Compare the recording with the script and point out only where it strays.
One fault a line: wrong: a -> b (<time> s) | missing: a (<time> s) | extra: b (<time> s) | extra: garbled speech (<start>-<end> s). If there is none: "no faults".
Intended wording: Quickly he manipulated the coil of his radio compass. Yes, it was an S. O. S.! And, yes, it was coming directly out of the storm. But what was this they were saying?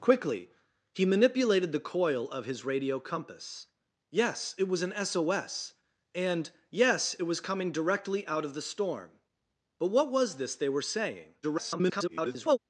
extra: garbled speech (11.4-12.6 s)